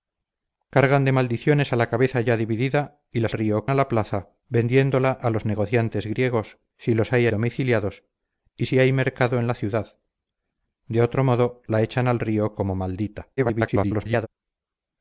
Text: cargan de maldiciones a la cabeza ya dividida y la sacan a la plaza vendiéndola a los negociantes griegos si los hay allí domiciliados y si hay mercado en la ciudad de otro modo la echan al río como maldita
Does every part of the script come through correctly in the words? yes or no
no